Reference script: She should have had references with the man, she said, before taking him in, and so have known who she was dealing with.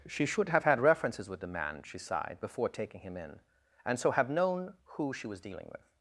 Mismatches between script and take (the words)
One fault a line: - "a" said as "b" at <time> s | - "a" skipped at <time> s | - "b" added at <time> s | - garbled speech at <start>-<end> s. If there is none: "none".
- "said" said as "sighed" at 2.0 s